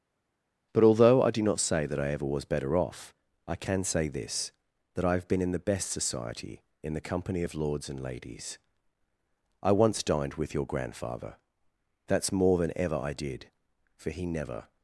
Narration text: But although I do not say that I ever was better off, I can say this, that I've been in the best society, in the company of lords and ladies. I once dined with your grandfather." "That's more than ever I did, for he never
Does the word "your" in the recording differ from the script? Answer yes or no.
no